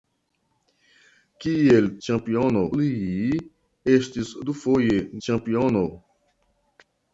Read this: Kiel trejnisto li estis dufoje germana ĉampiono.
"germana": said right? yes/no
no